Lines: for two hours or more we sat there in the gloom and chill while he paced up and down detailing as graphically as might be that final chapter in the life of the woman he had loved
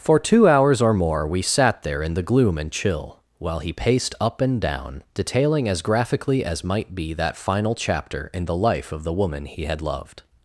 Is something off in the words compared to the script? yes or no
no